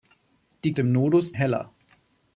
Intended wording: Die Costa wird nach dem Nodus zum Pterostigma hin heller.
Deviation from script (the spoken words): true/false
true